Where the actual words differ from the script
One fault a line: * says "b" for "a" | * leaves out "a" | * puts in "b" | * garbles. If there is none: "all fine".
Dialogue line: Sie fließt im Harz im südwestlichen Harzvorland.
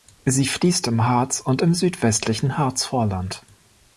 * puts in "und"